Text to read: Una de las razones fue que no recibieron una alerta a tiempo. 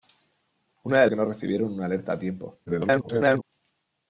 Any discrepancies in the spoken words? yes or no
yes